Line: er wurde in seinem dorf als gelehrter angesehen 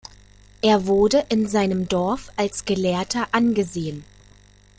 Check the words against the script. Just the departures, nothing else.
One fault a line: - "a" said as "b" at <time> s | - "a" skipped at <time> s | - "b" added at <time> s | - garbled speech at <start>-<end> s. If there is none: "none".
none